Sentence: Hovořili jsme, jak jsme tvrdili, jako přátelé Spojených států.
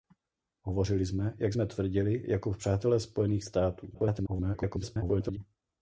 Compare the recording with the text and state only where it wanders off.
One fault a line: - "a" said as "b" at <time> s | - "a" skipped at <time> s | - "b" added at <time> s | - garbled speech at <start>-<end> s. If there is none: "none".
- garbled speech at 3.9-5.4 s